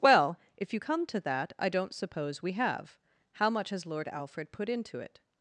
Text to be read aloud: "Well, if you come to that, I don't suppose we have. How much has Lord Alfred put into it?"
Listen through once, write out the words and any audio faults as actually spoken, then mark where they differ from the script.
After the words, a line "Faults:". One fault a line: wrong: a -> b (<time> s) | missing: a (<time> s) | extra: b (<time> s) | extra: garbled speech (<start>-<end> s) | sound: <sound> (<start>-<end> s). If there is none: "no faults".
"Well, if you come to that, I don't suppose we have. How much has Lord Alfred put into it?"
Faults:
no faults